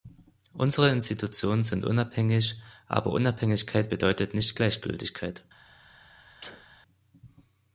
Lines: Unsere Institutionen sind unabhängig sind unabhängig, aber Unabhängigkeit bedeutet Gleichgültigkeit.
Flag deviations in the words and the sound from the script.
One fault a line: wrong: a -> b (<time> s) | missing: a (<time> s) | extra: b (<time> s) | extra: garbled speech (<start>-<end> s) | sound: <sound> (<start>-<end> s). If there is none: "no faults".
missing: sind unabhängig (2.6 s)
extra: nicht (4.3 s)
sound: sneeze (6.4-6.7 s)